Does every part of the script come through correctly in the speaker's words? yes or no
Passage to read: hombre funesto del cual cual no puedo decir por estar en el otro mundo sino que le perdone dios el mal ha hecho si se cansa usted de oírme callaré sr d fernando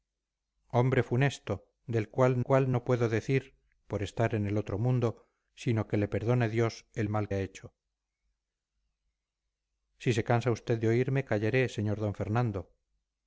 yes